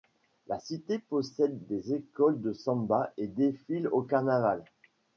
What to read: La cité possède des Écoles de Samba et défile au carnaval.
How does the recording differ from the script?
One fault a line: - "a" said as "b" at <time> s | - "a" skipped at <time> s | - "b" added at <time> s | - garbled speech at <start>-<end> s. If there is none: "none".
none